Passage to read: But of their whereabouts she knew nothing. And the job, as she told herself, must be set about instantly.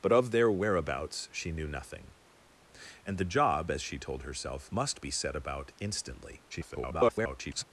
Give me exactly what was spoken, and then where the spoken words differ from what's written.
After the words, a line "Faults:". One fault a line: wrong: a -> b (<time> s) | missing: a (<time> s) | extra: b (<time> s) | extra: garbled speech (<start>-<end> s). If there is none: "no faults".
But of their whereabouts she knew nothing. And the job, as she told herself, must be set about instantly. [garbled]
Faults:
extra: garbled speech (6.5-7.6 s)